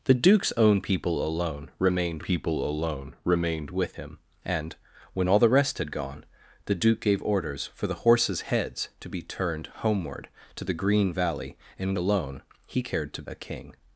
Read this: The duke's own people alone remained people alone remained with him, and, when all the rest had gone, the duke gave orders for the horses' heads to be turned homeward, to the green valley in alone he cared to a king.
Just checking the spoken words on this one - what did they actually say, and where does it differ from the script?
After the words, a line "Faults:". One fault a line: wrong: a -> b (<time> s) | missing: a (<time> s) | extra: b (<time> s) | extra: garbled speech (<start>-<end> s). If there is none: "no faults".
The duke's own people alone remained people alone remained with him, and, when all the rest had gone, the duke gave orders for the horses' heads to be turned homeward, to the green valley in alone he cared to a king.
Faults:
no faults